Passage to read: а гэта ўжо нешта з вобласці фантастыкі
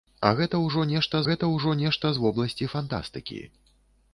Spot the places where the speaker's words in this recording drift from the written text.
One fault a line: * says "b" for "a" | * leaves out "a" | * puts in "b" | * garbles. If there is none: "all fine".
* puts in "гэта ўжо нешта"